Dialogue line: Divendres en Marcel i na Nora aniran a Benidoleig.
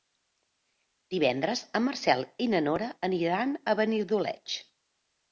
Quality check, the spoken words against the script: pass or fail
pass